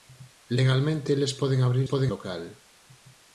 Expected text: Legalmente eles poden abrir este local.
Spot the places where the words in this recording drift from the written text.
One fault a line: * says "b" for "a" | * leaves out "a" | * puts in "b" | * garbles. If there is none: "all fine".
* says "poden" for "este"